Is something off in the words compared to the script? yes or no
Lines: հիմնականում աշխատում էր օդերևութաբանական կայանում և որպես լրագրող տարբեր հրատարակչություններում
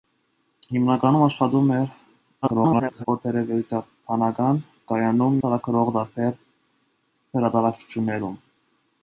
yes